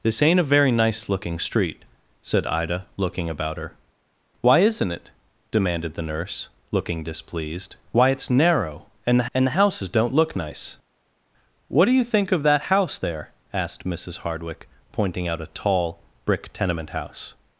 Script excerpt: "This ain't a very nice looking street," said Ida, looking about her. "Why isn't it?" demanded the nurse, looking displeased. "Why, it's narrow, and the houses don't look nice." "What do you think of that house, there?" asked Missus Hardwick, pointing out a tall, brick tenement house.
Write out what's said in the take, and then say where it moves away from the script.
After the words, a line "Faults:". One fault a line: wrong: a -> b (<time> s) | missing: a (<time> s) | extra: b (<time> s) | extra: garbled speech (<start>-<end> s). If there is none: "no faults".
"This ain't a very nice looking street," said Ida, looking about her. "Why isn't it?" demanded the nurse, looking displeased. "Why, it's narrow, and the and the houses don't look nice." "What do you think of that house, there?" asked Missus Hardwick, pointing out a tall, brick tenement house.
Faults:
extra: and the (9.3 s)